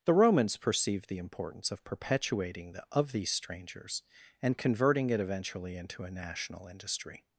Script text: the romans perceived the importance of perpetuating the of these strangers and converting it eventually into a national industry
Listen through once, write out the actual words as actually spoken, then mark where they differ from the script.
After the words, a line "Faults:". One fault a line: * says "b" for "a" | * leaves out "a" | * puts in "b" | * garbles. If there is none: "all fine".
the romans perceived the importance of perpetuating the of these strangers and converting it eventually into a national industry
Faults:
all fine